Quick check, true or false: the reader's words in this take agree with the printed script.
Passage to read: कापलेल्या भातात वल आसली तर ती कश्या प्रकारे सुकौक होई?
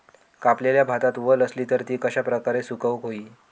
true